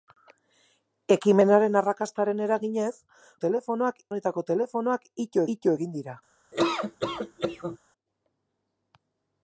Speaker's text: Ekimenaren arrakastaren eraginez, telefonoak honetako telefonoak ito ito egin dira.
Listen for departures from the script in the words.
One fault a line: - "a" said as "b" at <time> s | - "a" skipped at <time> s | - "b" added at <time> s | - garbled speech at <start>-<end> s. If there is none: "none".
none